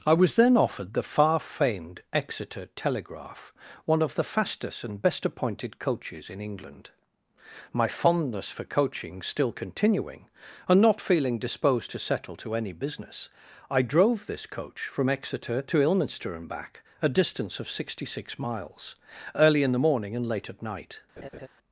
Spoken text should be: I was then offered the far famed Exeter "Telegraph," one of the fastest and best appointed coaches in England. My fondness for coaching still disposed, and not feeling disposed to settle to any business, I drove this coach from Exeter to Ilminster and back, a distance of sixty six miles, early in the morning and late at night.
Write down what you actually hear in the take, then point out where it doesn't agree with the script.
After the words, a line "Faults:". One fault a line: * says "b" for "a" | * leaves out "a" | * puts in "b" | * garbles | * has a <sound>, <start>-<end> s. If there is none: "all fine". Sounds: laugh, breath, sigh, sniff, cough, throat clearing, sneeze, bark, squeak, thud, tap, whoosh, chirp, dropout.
I was then offered the far famed Exeter "Telegraph," one of the fastest and best appointed coaches in England. My fondness for coaching still continuing, and not feeling disposed to settle to any business, I drove this coach from Exeter to Ilminster and back, a distance of sixty six miles, early in the morning and late at night.
Faults:
* says "continuing" for "disposed"
* has a laugh, 21.2-21.5 s